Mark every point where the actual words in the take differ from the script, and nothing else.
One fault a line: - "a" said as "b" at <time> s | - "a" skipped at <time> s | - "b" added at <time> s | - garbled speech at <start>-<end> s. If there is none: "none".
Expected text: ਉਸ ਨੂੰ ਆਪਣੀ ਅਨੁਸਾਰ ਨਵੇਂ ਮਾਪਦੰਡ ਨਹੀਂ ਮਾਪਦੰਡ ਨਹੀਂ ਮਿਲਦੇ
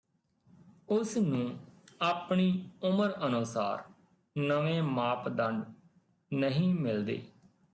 - "ਉਮਰ" added at 2.8 s
- "ਮਾਪਦੰਡ ਨਹੀਂ" skipped at 6.7 s